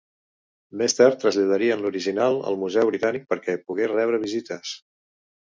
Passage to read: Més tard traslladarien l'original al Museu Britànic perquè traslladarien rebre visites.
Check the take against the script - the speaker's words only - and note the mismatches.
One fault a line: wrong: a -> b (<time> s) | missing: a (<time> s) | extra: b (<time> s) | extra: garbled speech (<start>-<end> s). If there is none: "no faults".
wrong: traslladarien -> pogués (3.7 s)